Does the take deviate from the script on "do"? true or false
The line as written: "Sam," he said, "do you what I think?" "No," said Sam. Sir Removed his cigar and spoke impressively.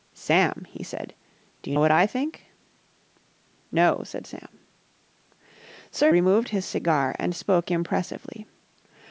false